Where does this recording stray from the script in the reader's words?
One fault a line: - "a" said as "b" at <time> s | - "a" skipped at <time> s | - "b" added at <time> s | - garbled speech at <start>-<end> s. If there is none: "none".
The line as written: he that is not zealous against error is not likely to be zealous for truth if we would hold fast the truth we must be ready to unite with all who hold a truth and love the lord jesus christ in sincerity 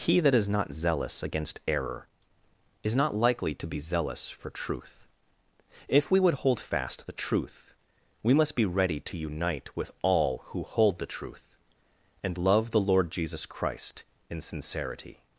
- "a" said as "the" at 11.0 s